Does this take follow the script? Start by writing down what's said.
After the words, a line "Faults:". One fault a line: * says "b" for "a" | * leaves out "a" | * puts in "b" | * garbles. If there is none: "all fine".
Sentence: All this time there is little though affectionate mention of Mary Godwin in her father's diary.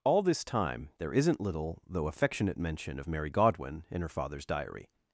All this time there isn't little though affectionate mention of Mary Godwin in her father's diary.
Faults:
* says "isn't" for "is"